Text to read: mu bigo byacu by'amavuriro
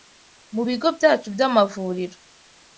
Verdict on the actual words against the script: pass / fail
pass